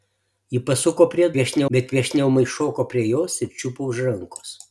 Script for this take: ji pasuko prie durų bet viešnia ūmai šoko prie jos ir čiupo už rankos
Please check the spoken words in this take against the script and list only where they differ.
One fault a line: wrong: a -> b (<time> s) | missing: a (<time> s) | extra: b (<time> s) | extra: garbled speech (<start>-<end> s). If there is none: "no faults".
wrong: durų -> viešnia (1.4 s)